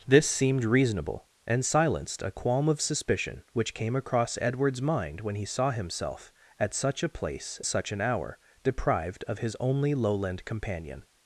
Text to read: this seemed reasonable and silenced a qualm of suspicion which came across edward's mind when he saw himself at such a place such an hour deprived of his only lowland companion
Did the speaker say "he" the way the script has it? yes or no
yes